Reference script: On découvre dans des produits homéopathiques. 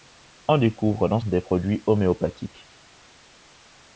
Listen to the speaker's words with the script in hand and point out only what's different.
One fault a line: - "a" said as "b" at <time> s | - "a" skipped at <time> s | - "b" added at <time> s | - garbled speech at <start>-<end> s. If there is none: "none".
none